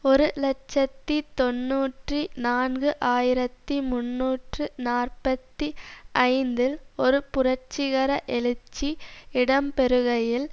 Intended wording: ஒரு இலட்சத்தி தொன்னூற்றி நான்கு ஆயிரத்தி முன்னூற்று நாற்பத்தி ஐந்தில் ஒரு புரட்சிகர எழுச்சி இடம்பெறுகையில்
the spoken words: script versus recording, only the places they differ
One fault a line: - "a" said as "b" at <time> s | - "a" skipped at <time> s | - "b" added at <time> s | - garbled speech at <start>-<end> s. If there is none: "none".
none